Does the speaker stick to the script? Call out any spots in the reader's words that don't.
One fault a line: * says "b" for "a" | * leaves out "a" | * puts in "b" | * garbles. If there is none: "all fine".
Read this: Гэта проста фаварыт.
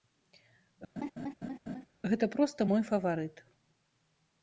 * puts in "мой"